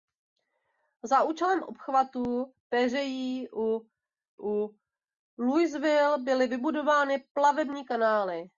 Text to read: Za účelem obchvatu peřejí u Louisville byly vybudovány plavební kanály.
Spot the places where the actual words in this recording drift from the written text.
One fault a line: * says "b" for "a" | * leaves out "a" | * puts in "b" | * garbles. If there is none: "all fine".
* puts in "u"